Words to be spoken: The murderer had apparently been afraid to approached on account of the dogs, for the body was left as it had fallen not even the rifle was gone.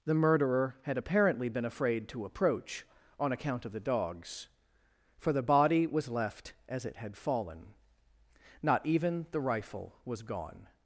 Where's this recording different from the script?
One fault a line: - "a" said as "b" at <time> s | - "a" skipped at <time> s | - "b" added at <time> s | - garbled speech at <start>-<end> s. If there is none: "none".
- "approached" said as "approach" at 2.2 s